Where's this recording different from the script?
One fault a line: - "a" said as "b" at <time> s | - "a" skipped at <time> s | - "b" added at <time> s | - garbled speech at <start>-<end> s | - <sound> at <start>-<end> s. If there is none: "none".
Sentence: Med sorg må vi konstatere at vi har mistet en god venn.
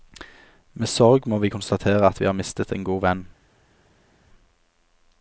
none